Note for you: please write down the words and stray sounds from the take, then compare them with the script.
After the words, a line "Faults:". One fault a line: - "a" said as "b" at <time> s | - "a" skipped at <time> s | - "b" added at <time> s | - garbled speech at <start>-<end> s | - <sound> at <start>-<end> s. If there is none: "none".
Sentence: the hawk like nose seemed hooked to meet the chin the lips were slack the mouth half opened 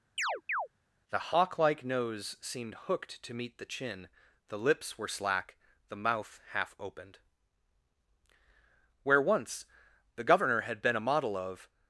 the hawk like nose seemed hooked to meet the chin the lips were slack the mouth half opened where once the governor had been a model of
Faults:
- chirp at 0.2-0.7 s
- "where once the governor had been a model of" added at 9.0 s